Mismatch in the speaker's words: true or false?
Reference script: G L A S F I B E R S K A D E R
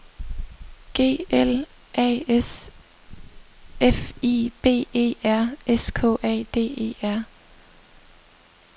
false